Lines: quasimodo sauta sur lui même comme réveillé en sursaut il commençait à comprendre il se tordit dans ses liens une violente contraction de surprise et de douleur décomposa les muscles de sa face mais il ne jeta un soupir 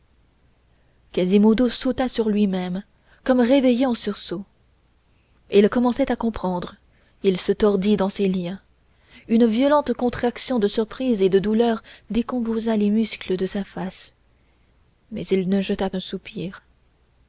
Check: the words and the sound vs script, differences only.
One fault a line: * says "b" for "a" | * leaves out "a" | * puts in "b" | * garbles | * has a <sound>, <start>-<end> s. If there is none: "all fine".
all fine